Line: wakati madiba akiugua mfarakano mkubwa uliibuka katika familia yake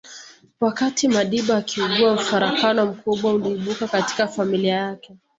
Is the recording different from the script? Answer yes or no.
no